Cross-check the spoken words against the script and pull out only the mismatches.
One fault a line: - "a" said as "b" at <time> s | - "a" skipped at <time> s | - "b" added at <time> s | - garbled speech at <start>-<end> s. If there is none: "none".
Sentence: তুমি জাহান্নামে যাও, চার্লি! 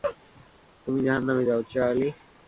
none